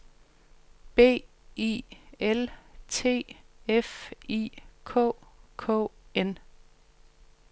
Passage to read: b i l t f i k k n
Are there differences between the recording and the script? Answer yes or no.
no